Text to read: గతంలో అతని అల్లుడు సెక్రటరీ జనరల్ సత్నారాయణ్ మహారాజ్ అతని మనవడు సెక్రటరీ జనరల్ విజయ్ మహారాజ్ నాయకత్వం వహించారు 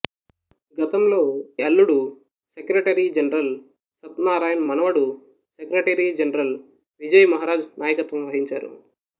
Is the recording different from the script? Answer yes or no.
yes